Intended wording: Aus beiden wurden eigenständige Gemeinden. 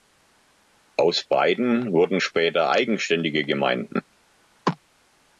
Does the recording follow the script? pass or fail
fail